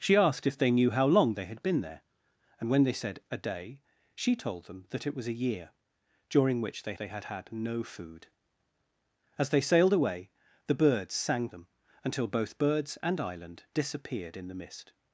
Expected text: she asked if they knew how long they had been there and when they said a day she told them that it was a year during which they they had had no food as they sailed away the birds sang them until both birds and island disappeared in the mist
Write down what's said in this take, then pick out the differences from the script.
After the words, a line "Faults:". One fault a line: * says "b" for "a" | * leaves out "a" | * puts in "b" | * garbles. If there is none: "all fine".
she asked if they knew how long they had been there and when they said a day she told them that it was a year during which they they had had no food as they sailed away the birds sang them until both birds and island disappeared in the mist
Faults:
all fine